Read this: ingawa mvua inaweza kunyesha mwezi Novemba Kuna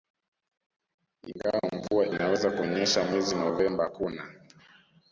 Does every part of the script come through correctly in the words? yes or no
yes